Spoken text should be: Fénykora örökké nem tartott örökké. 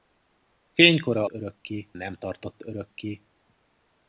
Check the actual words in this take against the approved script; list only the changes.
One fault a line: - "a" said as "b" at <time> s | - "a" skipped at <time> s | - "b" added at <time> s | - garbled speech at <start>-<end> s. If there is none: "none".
none